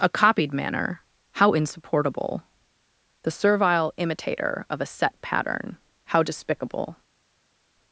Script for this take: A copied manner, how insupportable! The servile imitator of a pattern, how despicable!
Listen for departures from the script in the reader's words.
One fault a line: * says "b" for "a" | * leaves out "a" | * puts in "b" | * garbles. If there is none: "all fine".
* puts in "set"